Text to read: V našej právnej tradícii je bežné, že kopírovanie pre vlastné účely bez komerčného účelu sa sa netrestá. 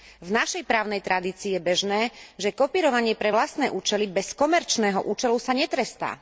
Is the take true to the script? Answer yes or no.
no